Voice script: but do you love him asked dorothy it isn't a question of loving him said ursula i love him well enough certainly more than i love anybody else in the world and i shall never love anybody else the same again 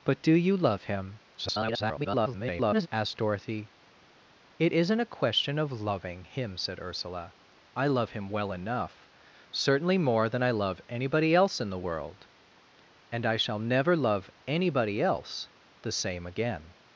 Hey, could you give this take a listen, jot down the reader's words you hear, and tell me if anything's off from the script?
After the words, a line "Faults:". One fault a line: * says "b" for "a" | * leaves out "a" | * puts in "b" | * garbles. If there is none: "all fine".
but do you love him [garbled] asked dorothy it isn't a question of loving him said ursula i love him well enough certainly more than i love anybody else in the world and i shall never love anybody else the same again
Faults:
* garbles